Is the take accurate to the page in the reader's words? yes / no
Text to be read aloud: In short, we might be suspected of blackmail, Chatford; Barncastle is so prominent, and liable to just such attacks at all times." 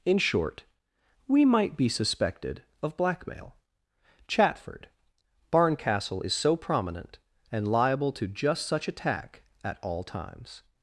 no